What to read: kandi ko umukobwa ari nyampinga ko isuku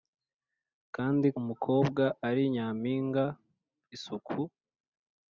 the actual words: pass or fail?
fail